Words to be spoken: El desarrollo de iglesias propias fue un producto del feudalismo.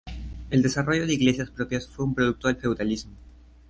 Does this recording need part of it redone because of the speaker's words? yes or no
no